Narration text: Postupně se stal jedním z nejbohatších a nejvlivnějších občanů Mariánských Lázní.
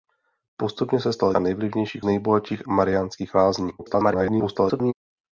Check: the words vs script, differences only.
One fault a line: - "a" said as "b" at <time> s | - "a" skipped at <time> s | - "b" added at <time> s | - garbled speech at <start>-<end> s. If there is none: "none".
- "jedním z nejbohatších" skipped at 1.4 s
- "občanů" said as "nejbohatších" at 2.0 s
- garbled speech at 3.8-4.9 s